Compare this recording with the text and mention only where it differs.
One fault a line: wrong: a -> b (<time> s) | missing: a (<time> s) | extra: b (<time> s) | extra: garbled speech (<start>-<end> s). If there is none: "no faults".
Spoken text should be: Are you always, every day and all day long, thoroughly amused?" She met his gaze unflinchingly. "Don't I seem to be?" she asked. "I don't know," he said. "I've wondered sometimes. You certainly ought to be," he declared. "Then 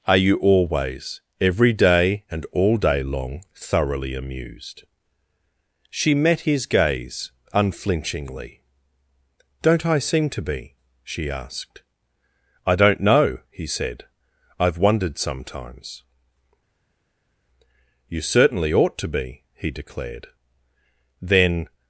no faults